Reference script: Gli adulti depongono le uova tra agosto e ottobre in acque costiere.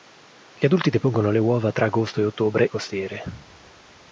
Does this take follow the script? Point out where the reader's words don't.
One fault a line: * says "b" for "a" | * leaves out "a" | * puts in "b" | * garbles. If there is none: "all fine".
* leaves out "in acque"